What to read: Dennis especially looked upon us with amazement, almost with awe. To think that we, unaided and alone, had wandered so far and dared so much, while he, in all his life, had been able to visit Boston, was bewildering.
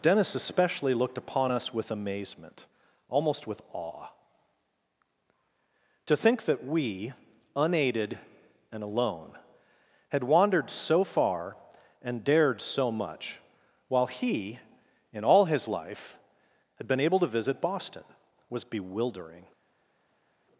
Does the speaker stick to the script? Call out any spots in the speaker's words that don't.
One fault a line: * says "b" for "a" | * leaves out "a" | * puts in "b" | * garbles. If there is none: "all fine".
all fine